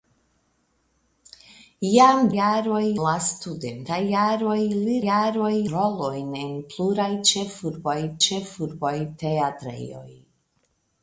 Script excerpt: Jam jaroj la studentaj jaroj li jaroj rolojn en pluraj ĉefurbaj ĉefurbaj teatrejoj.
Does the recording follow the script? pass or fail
pass